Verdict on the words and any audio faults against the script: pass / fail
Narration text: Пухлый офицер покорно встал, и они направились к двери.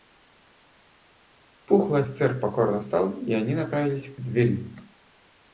pass